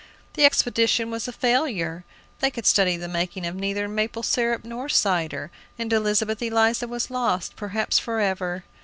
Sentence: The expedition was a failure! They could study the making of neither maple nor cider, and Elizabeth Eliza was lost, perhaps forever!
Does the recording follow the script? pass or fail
fail